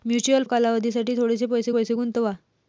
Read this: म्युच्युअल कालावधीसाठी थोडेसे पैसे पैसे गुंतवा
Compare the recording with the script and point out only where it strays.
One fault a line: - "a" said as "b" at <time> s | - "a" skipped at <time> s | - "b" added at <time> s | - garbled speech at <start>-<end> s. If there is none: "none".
none